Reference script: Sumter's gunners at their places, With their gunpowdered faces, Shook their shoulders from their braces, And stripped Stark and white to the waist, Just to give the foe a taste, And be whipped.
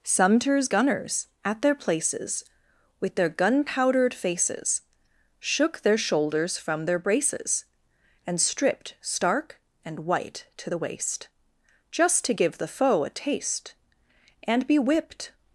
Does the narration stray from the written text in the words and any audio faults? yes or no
no